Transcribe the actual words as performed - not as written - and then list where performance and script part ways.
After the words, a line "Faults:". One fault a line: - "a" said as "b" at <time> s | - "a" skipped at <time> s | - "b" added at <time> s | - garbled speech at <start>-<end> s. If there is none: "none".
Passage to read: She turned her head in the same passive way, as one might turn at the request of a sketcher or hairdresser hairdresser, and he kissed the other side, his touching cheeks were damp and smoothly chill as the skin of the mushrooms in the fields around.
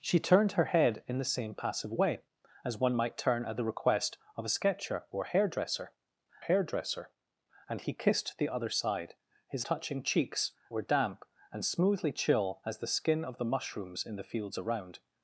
She turned her head in the same passive way, as one might turn at the request of a sketcher or hairdresser hairdresser, and he kissed the other side, his touching cheeks were damp and smoothly chill as the skin of the mushrooms in the fields around.
Faults:
none